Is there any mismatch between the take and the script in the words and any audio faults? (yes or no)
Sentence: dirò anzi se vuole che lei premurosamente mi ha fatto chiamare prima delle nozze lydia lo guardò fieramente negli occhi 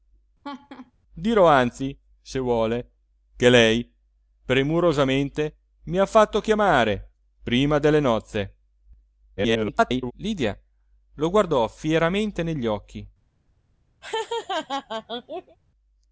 yes